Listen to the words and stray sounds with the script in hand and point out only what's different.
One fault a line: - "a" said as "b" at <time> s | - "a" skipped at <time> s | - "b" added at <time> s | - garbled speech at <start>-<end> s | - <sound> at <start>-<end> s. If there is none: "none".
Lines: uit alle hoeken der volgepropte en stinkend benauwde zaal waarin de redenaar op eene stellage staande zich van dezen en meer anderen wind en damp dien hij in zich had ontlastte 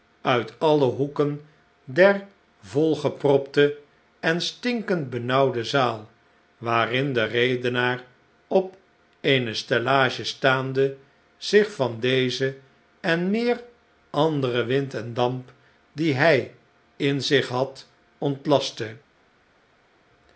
none